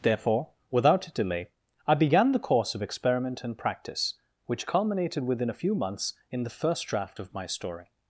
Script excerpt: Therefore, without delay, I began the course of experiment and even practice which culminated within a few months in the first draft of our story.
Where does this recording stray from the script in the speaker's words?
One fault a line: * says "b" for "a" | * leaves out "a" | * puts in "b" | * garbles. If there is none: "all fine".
* leaves out "even"
* says "my" for "our"